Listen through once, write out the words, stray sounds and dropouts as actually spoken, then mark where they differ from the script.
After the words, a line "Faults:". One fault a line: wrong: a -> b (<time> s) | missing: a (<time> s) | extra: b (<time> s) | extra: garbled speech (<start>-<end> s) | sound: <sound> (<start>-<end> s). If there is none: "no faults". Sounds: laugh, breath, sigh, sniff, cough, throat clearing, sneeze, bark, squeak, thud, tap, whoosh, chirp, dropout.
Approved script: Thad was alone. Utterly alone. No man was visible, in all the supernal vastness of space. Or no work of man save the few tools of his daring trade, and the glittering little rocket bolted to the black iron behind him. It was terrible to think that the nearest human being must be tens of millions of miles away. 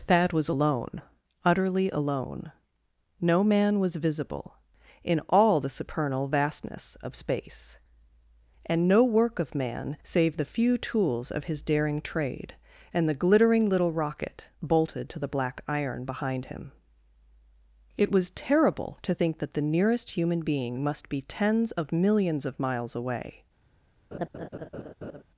Thad was alone. Utterly alone. No man was visible, in all the supernal vastness of space. And no work of man save the few tools of his daring trade, and the glittering little rocket bolted to the black iron behind him. It was terrible to think that the nearest human being must be tens of millions of miles away.
Faults:
wrong: Or -> And (8.7 s)
sound: laugh (24.1-25.2 s)